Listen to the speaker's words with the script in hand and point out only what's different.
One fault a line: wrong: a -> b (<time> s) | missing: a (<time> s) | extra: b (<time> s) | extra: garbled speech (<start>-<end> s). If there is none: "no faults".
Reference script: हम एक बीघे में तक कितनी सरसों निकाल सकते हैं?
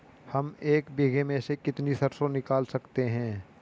wrong: तक -> से (1.4 s)